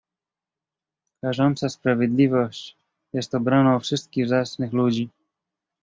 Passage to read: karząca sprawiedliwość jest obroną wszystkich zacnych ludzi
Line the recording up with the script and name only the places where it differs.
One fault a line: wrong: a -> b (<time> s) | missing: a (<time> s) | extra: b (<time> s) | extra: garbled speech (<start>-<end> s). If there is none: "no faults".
no faults